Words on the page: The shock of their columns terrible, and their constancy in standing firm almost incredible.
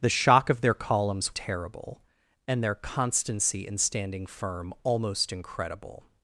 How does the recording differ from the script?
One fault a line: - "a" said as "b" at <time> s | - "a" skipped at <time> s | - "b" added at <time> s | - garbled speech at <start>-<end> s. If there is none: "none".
none